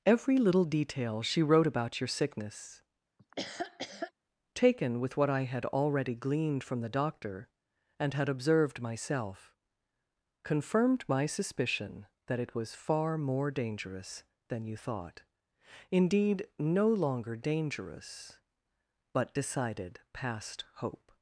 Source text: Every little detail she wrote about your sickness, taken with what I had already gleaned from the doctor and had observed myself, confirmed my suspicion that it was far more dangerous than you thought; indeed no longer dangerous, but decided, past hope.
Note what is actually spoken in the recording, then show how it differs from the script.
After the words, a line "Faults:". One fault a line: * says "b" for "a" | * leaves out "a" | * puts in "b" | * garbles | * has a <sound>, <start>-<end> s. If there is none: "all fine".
Every little detail she wrote about your sickness, taken with what I had already gleaned from the doctor and had observed myself, confirmed my suspicion that it was far more dangerous than you thought; indeed no longer dangerous, but decided, past hope.
Faults:
* has a laugh, 3.2-4.1 s